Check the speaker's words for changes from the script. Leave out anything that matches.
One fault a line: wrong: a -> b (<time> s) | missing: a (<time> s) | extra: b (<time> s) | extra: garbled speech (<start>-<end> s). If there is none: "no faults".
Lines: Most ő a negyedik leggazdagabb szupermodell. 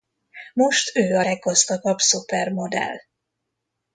missing: negyedik (1.2 s)